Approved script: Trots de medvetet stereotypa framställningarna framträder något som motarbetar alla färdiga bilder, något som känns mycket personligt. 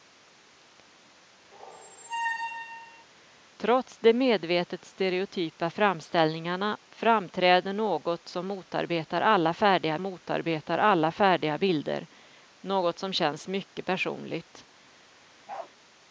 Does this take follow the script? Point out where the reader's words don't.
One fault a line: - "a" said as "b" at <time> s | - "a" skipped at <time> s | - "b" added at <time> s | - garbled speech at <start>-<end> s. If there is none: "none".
- "motarbetar alla färdiga" added at 10.0 s